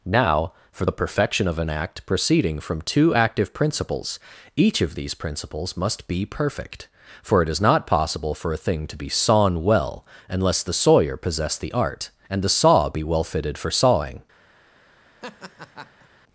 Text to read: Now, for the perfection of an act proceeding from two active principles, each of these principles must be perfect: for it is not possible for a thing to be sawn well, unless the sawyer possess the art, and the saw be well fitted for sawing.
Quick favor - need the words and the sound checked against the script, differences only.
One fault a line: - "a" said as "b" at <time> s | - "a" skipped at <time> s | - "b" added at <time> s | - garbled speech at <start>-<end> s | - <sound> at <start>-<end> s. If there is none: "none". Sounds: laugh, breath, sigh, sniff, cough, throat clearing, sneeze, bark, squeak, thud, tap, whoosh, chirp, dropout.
- laugh at 15.2-16.1 s